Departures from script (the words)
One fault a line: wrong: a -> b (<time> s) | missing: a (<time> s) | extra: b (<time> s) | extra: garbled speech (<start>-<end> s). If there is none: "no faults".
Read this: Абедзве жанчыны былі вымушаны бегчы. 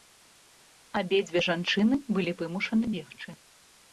no faults